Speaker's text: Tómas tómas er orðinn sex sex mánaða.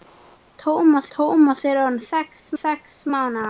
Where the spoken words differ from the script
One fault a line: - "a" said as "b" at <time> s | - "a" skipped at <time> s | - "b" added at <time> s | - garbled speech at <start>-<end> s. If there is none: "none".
none